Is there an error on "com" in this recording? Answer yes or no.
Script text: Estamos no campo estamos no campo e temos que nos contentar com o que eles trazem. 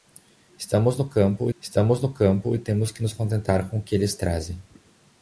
no